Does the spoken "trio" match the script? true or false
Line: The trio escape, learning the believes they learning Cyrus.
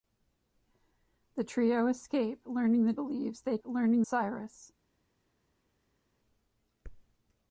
true